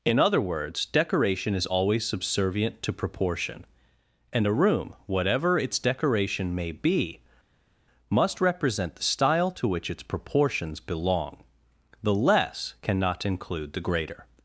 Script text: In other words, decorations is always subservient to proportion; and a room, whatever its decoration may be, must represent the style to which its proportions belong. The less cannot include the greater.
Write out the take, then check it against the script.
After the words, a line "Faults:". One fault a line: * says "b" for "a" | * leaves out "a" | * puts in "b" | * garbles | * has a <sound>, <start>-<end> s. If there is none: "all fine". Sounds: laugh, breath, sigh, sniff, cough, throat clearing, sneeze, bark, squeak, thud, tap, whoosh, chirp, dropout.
In other words, decoration is always subservient to proportion; and a room, whatever its decoration may be, must represent the style to which its proportions belong. The less cannot include the greater.
Faults:
* says "decoration" for "decorations"